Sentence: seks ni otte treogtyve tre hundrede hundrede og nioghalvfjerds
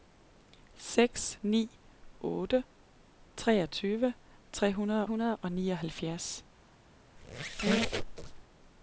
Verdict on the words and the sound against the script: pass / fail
fail